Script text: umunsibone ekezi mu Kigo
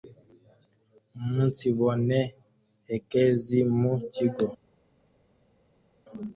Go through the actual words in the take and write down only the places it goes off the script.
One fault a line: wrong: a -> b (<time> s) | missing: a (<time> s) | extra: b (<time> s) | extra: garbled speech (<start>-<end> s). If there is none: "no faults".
no faults